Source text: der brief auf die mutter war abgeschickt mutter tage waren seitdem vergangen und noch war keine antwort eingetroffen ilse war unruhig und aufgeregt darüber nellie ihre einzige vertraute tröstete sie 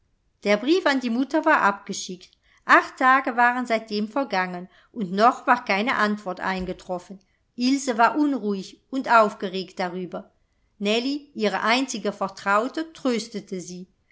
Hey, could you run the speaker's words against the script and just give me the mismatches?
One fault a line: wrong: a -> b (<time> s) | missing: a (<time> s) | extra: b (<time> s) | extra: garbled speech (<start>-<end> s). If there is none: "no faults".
wrong: auf -> an (0.9 s)
wrong: mutter -> acht (2.6 s)